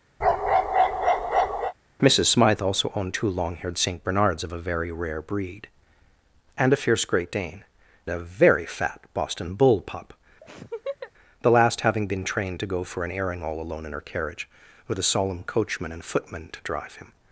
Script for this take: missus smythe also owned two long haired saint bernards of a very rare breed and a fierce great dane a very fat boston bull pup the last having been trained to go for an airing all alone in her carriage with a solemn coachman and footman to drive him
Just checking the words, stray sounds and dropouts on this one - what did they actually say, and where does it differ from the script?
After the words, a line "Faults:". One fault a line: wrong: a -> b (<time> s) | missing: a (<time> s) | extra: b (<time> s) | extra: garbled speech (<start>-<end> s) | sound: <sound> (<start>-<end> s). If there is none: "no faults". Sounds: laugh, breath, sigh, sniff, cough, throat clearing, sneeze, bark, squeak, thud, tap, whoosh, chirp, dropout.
missus smythe also owned two long haired saint bernards of a very rare breed and a fierce great dane a very fat boston bull pup the last having been trained to go for an airing all alone in her carriage with a solemn coachman and footman to drive him
Faults:
sound: bark (0.2-1.7 s)
sound: laugh (10.4-11.1 s)